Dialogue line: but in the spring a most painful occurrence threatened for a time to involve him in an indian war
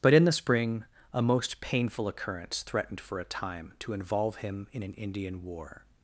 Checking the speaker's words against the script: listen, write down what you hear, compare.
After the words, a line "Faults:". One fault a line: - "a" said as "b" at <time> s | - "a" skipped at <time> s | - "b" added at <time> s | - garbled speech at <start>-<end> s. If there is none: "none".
but in the spring a most painful occurrence threatened for a time to involve him in an indian war
Faults:
none